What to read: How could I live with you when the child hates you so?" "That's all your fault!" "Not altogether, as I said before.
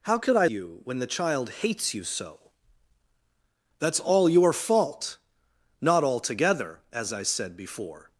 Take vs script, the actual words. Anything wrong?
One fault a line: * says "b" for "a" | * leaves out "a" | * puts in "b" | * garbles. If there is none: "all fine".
* leaves out "live with"